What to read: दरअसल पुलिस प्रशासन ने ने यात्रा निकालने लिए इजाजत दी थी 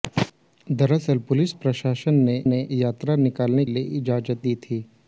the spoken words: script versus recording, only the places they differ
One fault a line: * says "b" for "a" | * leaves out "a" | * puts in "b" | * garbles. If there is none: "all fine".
all fine